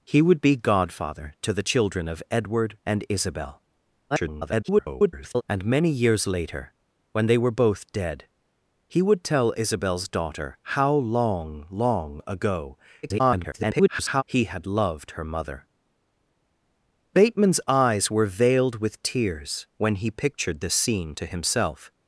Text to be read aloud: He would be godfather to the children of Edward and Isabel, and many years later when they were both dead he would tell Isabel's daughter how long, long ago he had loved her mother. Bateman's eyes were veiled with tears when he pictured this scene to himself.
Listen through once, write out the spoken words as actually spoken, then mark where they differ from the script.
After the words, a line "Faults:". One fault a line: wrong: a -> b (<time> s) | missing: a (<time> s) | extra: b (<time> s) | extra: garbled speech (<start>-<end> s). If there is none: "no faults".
He would be godfather to the children of Edward and Isabel, [garbled] and many years later when they were both dead he would tell Isabel's daughter how long, long ago [garbled] he had loved her mother. Bateman's eyes were veiled with tears when he pictured this scene to himself.
Faults:
extra: garbled speech (4.1-5.4 s)
extra: garbled speech (13.0-14.2 s)